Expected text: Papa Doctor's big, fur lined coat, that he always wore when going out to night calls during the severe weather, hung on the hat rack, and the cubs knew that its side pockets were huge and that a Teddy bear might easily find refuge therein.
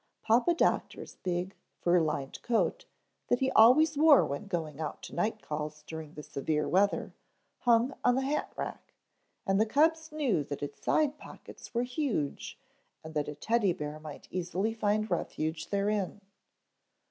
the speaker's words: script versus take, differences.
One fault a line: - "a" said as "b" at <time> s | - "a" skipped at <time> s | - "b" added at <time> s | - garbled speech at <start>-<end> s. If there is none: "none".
none